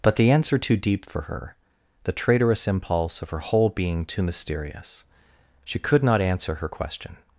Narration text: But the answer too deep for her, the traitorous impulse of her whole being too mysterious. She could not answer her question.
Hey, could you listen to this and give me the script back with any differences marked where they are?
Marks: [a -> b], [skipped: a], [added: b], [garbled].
But the answer too deep for her, the traitorous impulse of her whole being too mysterious. She could not answer her question.